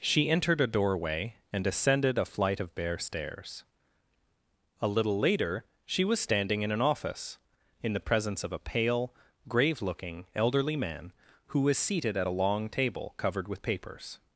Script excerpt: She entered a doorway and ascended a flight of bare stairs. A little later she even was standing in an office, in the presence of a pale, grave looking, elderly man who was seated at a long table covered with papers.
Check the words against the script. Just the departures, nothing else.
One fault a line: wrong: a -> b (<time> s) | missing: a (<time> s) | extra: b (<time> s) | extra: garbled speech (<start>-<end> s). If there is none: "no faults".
missing: even (6.0 s)